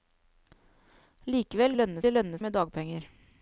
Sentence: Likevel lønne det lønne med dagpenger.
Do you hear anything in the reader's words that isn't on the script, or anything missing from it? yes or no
no